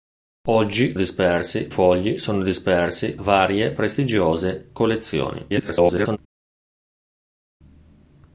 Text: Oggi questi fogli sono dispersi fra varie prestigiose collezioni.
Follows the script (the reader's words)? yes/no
no